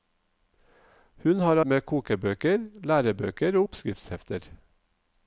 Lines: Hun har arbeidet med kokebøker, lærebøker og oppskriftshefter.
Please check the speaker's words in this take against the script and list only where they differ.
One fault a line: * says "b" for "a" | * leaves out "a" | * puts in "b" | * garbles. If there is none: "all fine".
* leaves out "arbeidet"